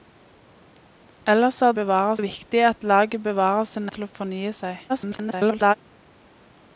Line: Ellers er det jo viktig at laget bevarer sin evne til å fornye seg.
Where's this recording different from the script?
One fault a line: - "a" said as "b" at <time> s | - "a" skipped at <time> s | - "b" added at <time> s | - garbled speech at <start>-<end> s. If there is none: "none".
- "det" said as "bevarer" at 1.7 s
- "evne" skipped at 3.9 s
- garbled speech at 4.9-5.7 s